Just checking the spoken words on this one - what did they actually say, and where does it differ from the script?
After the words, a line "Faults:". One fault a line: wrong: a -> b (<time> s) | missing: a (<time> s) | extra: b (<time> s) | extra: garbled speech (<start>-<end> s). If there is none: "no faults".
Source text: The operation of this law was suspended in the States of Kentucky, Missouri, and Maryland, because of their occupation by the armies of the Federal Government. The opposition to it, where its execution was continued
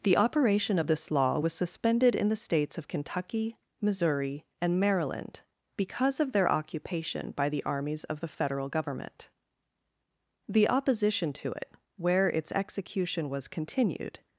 The operation of this law was suspended in the States of Kentucky, Missouri, and Maryland, because of their occupation by the armies of the Federal Government. The opposition to it, where its execution was continued
Faults:
no faults